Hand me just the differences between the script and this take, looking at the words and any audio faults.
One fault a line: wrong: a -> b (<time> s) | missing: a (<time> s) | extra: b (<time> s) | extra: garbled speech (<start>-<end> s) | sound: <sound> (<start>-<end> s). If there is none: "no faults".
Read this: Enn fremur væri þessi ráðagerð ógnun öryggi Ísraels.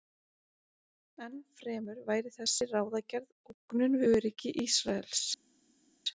no faults